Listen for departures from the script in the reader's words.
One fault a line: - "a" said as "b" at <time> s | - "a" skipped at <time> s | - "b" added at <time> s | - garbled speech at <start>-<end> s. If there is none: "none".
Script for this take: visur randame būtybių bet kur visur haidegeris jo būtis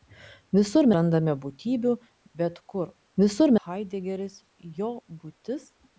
none